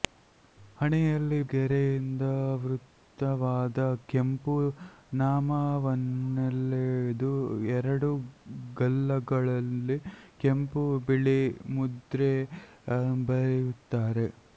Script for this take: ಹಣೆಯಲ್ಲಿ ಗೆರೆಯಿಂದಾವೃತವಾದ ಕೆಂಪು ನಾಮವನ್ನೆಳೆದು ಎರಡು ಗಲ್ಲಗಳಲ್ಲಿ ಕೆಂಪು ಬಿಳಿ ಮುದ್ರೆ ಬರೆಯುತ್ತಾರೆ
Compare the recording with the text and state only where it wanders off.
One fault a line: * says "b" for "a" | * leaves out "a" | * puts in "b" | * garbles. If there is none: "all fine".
all fine